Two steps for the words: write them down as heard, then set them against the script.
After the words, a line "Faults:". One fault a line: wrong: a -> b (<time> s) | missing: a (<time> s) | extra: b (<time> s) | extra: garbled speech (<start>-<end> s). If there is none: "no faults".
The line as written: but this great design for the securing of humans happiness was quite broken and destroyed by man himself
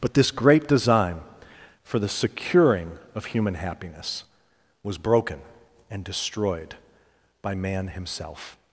but this great design for the securing of human happiness was broken and destroyed by man himself
Faults:
wrong: humans -> human (3.2 s)
missing: quite (5.0 s)